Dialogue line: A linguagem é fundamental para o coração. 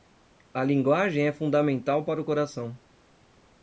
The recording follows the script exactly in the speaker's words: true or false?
true